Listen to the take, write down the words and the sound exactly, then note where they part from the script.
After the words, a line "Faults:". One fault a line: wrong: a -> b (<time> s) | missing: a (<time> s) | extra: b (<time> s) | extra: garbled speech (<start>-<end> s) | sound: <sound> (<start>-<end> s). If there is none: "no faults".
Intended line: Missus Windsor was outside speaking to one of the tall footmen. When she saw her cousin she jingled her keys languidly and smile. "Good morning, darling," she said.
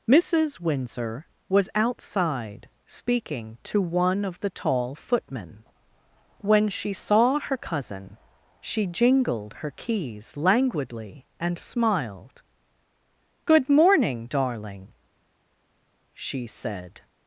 Missus Windsor was outside speaking to one of the tall footmen. When she saw her cousin she jingled her keys languidly and smiled. "Good morning, darling," she said.
Faults:
wrong: smile -> smiled (11.6 s)